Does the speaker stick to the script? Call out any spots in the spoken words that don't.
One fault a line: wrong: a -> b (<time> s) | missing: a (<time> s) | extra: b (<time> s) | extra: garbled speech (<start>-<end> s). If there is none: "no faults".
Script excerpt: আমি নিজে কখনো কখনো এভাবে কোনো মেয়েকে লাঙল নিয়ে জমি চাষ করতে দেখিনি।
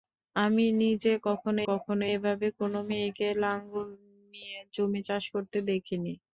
no faults